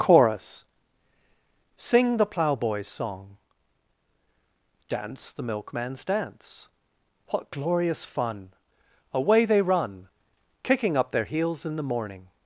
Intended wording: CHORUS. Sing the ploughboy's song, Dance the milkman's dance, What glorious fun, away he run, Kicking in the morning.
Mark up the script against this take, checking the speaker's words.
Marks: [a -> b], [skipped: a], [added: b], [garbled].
CHORUS. Sing the ploughboy's song, Dance the milkman's dance, What glorious fun, away [he -> they] run, Kicking [added: up their heels] in the morning.